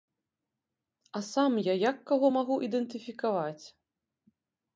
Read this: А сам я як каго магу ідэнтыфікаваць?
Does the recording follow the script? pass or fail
pass